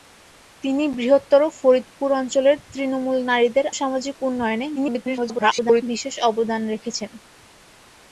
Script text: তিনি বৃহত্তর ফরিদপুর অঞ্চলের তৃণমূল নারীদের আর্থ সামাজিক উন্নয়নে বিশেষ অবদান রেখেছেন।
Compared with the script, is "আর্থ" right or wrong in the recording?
wrong